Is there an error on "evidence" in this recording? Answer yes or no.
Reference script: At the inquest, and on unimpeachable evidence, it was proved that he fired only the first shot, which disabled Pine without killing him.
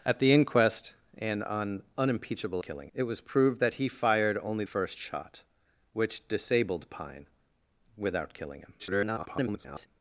yes